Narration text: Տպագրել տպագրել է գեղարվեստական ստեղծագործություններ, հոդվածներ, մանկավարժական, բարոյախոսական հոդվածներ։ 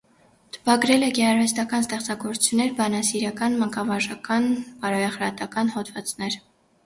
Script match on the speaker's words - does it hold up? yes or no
no